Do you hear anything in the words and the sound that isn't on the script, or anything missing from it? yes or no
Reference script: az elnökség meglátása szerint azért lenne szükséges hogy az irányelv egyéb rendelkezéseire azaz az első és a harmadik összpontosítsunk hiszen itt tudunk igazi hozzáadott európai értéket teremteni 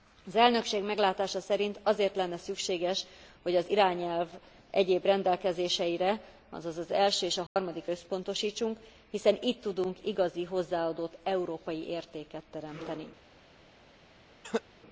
yes